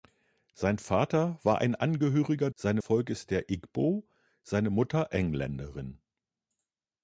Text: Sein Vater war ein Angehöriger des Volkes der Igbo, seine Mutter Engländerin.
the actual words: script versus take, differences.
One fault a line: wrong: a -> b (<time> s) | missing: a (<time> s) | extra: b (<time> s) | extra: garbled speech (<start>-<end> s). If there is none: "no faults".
wrong: des -> seine (2.5 s)